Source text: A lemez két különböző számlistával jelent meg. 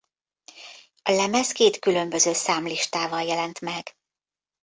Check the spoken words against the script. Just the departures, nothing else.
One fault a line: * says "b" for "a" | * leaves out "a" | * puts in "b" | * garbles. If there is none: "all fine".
all fine